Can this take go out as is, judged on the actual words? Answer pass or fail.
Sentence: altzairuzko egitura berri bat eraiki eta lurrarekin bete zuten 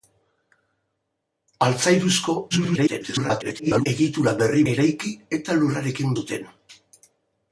fail